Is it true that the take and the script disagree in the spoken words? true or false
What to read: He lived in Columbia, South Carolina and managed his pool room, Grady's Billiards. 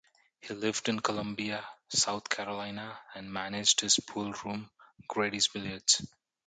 false